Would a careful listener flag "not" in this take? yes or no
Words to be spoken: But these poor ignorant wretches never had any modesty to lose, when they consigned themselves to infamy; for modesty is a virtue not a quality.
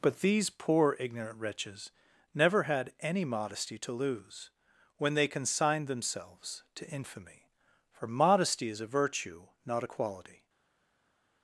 no